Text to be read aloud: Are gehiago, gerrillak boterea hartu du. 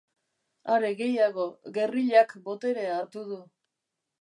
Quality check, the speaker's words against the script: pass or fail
pass